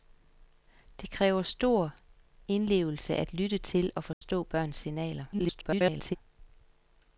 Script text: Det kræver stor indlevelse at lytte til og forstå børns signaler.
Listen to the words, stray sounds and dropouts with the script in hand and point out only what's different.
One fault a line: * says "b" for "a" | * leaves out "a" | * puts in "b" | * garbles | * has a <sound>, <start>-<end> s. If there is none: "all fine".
* has a dropout, 4.1-4.2 s
* garbles